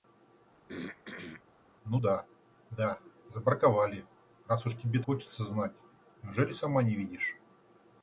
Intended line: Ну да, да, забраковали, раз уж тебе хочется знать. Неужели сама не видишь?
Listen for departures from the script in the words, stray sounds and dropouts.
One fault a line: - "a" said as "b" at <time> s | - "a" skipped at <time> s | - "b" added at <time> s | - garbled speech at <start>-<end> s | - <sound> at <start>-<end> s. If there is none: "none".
- throat clearing at 0.7-1.4 s